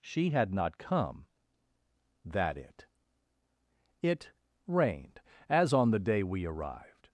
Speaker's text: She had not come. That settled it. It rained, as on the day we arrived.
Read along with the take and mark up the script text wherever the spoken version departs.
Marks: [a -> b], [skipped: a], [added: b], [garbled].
She had not come. That [skipped: settled] it. It rained, as on the day we arrived.